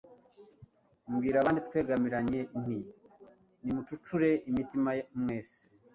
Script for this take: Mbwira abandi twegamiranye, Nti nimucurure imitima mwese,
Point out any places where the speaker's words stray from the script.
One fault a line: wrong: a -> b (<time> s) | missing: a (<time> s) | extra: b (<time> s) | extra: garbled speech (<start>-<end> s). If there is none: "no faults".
no faults